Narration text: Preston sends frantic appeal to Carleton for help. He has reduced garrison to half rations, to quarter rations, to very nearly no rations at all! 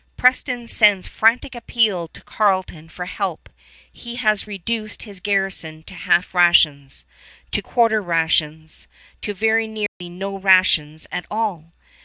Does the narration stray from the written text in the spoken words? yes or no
yes